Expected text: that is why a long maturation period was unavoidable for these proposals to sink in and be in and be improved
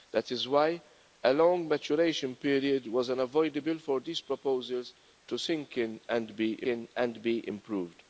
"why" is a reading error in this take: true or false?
false